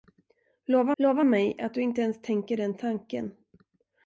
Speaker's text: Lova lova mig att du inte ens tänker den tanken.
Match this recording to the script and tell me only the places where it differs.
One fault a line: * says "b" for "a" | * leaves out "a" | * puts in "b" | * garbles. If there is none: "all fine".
all fine